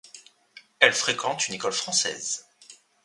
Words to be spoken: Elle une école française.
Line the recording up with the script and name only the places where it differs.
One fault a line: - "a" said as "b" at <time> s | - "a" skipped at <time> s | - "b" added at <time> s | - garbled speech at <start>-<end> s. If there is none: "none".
- "fréquente" added at 0.9 s